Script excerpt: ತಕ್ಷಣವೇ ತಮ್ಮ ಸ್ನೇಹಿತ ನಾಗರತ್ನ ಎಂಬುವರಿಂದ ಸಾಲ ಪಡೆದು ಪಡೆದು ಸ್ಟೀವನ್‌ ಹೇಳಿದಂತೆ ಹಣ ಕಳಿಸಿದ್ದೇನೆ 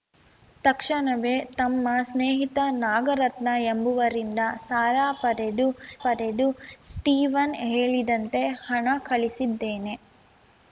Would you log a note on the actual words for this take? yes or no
no